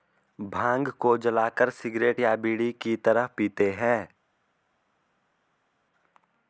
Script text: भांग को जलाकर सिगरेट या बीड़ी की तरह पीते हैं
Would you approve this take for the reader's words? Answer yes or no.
yes